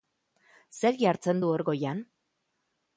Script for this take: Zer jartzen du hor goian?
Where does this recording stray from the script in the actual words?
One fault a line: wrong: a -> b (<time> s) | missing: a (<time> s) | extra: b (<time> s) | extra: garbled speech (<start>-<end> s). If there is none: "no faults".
no faults